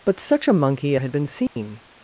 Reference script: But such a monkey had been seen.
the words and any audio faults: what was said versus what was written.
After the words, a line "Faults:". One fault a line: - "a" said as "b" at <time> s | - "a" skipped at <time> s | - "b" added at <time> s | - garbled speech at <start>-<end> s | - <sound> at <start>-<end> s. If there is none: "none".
But such a monkey had been seen.
Faults:
- dropout at 1.5-1.6 s